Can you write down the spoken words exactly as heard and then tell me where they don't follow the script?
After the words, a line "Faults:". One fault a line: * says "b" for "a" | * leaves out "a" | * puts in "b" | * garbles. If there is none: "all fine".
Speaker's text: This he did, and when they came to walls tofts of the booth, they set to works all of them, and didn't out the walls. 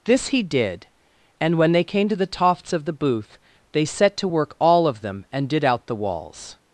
This he did, and when they came to the tofts of the booth, they set to work all of them, and did out the walls.
Faults:
* says "the" for "walls"
* says "work" for "works"
* says "did" for "didn't"